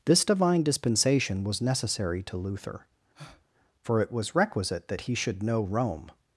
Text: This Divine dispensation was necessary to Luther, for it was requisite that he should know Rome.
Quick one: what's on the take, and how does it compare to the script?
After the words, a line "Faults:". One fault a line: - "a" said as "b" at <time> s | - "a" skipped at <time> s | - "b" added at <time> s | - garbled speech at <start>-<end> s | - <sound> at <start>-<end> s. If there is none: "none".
This Divine dispensation was necessary to Luther, for it was requisite that he should know Rome.
Faults:
- breath at 3.1-3.5 s